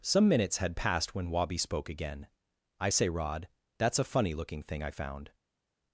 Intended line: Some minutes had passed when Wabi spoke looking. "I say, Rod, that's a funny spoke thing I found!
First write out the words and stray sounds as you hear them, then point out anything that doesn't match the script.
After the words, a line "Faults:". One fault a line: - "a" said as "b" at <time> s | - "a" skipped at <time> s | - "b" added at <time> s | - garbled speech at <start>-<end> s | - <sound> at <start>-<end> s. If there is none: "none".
Some minutes had passed when Wabi spoke again. "I say, Rod, that's a funny looking thing I found!
Faults:
- "looking" said as "again" at 1.9 s
- "spoke" said as "looking" at 4.3 s